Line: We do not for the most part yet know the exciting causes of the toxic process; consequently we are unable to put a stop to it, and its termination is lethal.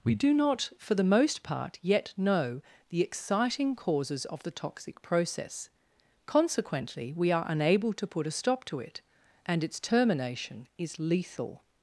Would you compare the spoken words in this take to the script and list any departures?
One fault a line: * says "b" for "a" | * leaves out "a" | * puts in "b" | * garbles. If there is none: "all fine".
all fine